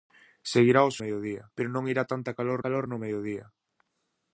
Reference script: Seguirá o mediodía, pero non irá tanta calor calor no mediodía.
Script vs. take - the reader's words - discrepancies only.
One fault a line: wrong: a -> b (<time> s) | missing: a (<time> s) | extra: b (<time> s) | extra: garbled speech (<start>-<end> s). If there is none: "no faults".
no faults